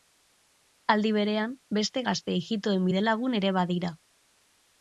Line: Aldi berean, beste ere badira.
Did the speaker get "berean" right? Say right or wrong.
right